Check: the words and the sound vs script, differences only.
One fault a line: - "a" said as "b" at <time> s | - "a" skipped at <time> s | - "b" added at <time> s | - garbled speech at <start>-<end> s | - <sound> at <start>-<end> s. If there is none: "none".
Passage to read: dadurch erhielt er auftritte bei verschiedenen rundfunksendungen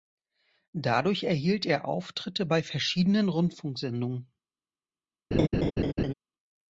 - laugh at 5.3-6.1 s